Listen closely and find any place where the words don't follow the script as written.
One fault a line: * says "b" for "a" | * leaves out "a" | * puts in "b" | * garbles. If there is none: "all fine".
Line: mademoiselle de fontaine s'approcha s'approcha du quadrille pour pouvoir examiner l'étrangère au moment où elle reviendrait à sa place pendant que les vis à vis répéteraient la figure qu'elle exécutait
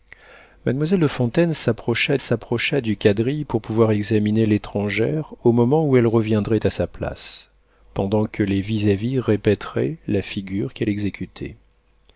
all fine